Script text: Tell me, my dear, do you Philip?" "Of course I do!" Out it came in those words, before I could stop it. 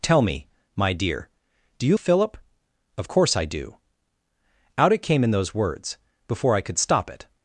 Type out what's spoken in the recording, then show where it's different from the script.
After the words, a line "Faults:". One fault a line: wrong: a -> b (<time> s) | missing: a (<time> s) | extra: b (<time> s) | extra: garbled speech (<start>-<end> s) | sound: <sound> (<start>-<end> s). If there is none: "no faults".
Tell me, my dear, do you Philip?" "Of course I do!" Out it came in those words, before I could stop it.
Faults:
no faults